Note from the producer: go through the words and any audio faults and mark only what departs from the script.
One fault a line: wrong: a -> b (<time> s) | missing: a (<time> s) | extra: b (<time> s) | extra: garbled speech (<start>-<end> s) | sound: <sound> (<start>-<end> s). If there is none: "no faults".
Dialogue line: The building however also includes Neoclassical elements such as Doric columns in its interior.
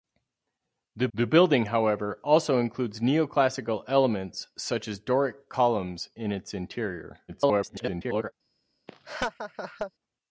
extra: the (1.1 s)
extra: garbled speech (7.3-8.3 s)
sound: laugh (8.9-9.9 s)